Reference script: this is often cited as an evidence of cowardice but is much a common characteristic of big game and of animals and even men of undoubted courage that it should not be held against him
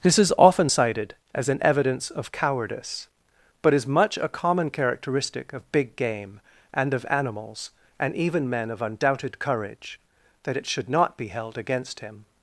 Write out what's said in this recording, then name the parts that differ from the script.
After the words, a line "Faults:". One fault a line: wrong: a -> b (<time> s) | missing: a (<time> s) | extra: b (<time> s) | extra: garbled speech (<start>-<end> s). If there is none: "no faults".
this is often cited as an evidence of cowardice but is much a common characteristic of big game and of animals and even men of undoubted courage that it should not be held against him
Faults:
no faults